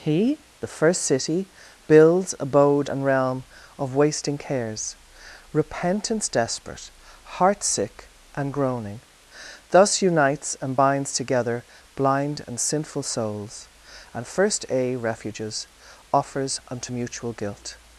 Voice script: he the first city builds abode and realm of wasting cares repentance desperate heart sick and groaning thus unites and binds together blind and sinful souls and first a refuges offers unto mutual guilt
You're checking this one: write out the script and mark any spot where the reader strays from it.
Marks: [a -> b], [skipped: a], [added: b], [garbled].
he the first city builds abode and realm of wasting cares repentance desperate heart sick and groaning thus unites and binds together blind and sinful souls and first a refuges offers unto mutual guilt